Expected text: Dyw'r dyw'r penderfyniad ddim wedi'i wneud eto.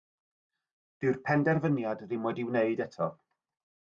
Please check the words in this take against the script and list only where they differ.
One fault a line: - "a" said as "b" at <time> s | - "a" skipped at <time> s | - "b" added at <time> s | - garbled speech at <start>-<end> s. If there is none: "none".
- "dyw'r" skipped at 1.2 s